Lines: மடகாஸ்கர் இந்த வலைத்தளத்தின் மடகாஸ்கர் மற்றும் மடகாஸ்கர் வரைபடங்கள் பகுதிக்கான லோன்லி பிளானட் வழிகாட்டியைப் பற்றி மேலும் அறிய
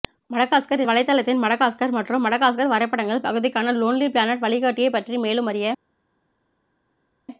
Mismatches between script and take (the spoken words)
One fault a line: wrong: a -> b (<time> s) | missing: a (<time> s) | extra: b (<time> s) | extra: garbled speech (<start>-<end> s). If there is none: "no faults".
missing: இந்த (0.8 s)